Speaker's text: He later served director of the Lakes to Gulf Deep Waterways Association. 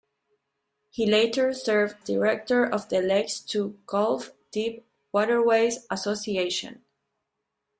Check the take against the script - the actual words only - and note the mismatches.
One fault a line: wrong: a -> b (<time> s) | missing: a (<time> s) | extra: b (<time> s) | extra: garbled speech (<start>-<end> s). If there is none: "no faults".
no faults